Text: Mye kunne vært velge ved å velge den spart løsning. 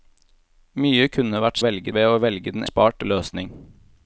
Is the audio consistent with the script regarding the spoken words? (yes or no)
yes